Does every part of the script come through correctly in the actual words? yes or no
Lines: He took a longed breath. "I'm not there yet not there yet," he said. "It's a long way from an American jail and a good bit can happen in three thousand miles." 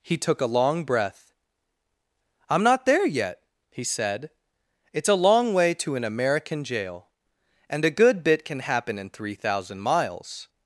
no